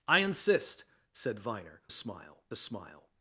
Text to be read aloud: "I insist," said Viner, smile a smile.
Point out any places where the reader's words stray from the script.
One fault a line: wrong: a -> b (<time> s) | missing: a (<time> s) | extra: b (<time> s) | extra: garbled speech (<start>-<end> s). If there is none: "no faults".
no faults